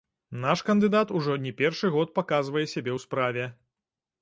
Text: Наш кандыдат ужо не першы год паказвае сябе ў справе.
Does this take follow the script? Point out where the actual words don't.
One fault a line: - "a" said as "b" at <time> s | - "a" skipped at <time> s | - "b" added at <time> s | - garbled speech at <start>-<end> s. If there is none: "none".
none